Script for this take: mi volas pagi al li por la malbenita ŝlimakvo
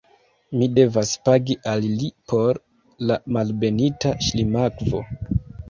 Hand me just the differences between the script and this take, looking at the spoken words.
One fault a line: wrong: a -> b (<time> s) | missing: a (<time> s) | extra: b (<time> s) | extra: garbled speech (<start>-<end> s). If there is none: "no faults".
wrong: volas -> devas (0.8 s)